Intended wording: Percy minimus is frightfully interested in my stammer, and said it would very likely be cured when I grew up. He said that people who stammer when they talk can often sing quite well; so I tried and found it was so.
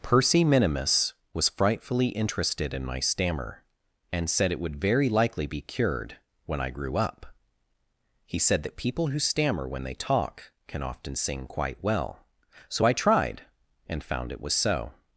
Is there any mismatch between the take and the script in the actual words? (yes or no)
yes